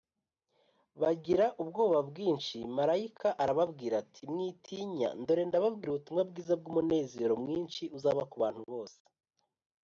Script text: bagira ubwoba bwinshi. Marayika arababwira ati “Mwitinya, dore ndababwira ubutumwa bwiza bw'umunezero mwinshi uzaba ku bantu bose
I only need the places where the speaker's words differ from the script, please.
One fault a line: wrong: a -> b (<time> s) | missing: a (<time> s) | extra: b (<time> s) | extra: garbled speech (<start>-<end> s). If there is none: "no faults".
no faults